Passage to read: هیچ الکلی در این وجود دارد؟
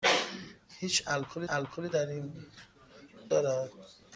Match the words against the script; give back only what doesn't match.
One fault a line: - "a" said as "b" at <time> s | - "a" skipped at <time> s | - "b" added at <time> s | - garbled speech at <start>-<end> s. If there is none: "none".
- "الکلی" added at 1.5 s
- "وجود" skipped at 2.5 s